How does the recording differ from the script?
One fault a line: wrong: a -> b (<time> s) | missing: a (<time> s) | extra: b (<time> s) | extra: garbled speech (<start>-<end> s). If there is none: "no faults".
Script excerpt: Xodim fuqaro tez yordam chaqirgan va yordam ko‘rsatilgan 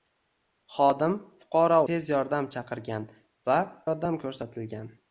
no faults